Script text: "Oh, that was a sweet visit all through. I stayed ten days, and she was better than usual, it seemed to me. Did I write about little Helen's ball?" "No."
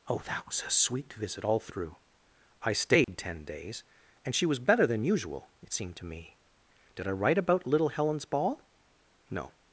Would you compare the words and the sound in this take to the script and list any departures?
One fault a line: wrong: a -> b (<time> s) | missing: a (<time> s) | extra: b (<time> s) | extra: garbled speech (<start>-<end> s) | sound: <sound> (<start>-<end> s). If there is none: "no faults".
sound: dropout (3.0-3.1 s)